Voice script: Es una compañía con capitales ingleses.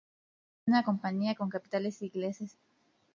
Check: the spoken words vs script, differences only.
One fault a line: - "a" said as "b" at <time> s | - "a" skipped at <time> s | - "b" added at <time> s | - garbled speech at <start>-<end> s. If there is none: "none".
none